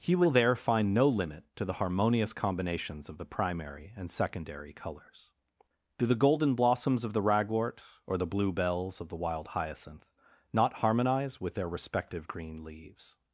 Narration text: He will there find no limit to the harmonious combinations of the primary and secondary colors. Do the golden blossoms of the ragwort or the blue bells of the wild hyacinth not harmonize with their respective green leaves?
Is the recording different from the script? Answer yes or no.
no